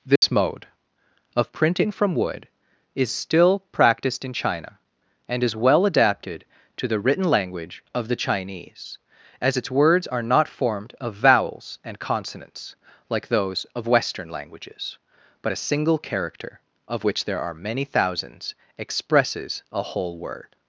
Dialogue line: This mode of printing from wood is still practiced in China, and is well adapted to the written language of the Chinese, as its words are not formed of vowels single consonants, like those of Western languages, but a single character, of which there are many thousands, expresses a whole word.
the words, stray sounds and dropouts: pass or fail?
fail